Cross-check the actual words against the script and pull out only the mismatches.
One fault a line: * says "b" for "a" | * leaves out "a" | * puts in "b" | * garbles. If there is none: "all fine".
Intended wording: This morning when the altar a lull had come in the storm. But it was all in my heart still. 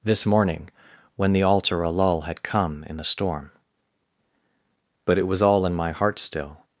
all fine